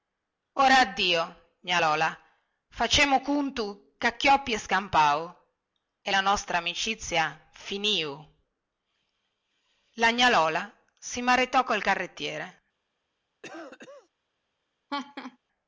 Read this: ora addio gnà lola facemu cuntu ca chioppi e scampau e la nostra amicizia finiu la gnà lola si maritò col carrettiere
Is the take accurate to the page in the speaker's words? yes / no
yes